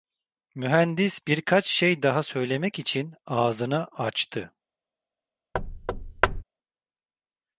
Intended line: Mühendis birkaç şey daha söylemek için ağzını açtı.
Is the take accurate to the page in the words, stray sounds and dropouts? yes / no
no